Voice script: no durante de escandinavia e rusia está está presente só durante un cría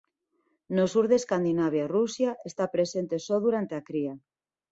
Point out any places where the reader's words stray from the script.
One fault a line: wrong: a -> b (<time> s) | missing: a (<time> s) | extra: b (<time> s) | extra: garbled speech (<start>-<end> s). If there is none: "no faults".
wrong: durante -> sur (0.9 s)
missing: está (2.6 s)
wrong: un -> a (3.8 s)